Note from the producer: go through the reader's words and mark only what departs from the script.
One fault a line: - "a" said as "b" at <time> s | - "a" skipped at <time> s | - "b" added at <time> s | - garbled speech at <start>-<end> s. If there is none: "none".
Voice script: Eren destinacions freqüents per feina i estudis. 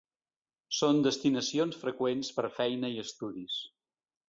- "Eren" said as "Són" at 0.8 s